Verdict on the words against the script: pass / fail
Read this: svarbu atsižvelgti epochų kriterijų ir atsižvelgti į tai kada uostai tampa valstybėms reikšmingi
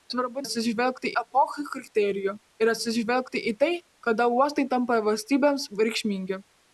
pass